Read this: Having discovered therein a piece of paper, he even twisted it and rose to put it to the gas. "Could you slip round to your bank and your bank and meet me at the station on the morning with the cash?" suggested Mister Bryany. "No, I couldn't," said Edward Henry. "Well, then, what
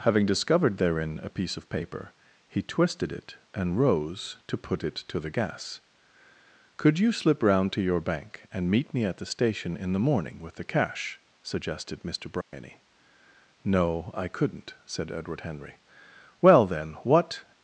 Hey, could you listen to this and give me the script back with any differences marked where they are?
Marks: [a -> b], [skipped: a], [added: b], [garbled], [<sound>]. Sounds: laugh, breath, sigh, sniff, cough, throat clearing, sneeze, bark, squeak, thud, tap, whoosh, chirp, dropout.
Having discovered therein a piece of paper, he [skipped: even] twisted it and rose to put it to the gas. "Could you slip round to your bank and [skipped: your bank and] meet me at the station [on -> in] the morning with the cash?" suggested Mister Bryany. [dropout] "No, I couldn't," said Edward Henry. "Well, then, what